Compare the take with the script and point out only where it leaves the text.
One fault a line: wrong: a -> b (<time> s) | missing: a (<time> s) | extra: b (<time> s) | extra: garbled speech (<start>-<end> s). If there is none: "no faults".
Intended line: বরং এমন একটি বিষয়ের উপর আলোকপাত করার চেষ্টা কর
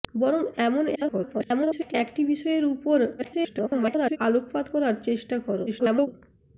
extra: garbled speech (0.9-1.9 s)
extra: garbled speech (3.2-4.2 s)
extra: garbled speech (5.7-6.1 s)